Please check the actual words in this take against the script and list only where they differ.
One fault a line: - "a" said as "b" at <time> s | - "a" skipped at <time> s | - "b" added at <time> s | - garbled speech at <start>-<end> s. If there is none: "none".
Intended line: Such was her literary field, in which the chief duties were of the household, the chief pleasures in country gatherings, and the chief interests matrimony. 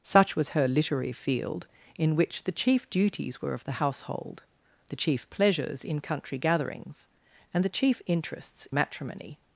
none